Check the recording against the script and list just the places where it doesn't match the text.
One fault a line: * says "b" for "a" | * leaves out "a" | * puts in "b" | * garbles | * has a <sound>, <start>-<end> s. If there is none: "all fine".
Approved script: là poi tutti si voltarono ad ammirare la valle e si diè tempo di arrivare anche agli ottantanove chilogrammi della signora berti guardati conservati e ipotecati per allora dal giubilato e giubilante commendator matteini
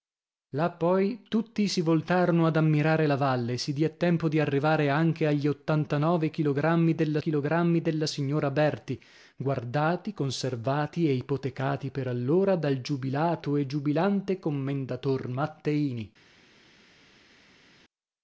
* puts in "chilogrammi della"